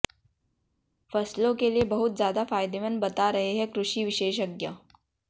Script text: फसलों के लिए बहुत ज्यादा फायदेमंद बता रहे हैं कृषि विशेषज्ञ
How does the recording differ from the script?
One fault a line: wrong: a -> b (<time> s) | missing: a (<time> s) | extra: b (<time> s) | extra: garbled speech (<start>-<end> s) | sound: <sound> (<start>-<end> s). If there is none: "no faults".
no faults